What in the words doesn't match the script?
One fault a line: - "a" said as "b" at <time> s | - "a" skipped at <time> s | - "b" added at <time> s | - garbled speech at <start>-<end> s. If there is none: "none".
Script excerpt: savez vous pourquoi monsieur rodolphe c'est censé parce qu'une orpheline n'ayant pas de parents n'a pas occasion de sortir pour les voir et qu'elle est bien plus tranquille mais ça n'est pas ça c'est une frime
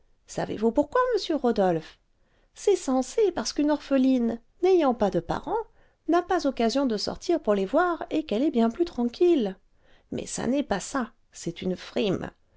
none